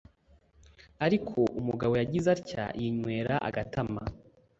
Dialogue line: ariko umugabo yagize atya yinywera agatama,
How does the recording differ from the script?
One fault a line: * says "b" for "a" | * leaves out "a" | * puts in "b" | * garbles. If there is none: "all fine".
all fine